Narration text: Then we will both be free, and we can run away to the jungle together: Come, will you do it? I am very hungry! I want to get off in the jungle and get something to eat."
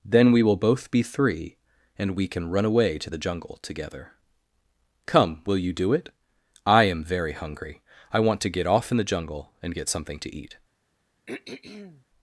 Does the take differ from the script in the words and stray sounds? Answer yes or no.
yes